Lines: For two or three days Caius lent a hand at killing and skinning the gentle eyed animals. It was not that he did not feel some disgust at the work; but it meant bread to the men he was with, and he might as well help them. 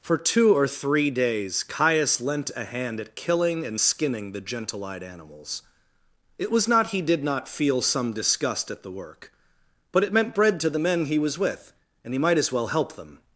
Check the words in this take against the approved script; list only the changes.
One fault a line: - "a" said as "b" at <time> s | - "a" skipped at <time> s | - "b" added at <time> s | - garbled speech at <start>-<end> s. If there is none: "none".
- "that" skipped at 6.9 s